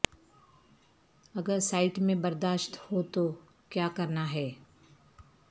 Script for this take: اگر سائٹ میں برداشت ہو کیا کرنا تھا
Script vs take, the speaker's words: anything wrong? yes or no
yes